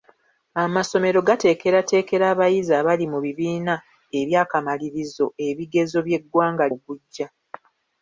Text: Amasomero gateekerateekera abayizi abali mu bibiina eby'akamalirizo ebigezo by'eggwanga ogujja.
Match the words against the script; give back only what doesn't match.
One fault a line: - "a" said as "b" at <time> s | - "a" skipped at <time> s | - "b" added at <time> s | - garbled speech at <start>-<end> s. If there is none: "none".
none